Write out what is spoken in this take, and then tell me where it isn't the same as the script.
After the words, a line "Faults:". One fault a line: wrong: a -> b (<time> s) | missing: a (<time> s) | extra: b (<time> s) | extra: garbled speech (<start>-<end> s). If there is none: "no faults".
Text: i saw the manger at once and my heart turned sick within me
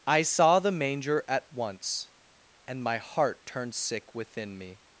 i saw the manger at once and my heart turned sick within me
Faults:
no faults